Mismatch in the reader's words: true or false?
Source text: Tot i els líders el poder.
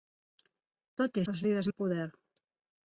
false